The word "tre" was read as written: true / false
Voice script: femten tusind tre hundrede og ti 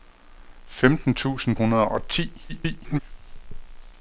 false